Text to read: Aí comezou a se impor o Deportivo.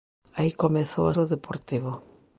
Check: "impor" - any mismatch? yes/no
yes